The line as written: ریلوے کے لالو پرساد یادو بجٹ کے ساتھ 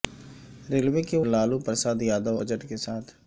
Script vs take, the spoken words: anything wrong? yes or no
no